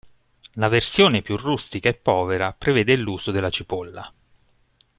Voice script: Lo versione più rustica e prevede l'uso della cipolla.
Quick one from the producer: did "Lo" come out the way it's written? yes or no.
no